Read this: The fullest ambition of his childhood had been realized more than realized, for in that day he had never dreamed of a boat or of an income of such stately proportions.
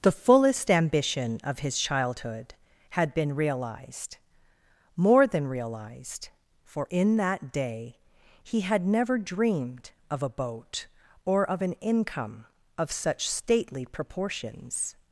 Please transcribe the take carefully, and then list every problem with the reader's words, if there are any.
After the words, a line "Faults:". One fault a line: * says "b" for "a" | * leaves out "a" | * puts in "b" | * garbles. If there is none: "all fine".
The fullest ambition of his childhood had been realized more than realized, for in that day he had never dreamed of a boat or of an income of such stately proportions.
Faults:
all fine